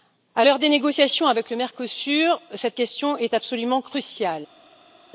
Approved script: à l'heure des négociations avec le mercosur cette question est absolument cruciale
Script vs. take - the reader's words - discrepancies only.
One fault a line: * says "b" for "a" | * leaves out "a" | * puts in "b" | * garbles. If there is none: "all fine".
all fine